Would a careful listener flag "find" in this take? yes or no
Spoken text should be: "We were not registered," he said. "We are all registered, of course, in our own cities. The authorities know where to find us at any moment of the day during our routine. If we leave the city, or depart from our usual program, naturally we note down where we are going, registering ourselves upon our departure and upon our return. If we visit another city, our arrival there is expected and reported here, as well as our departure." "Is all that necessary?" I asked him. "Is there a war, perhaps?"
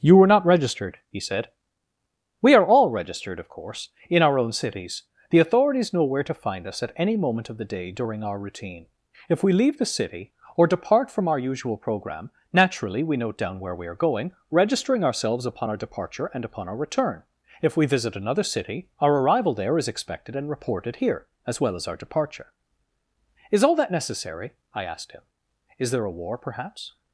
no